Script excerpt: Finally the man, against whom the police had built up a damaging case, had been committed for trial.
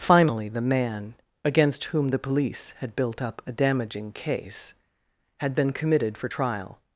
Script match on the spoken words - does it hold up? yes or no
yes